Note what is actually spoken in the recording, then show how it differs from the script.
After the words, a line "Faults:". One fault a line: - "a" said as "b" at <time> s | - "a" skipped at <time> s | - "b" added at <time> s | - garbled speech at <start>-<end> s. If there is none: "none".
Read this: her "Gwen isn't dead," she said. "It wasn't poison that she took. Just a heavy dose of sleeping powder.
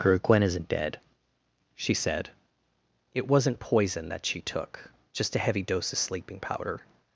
her "Gwen isn't dead," she said. "It wasn't poison that she took. Just a heavy dose of sleeping powder.
Faults:
none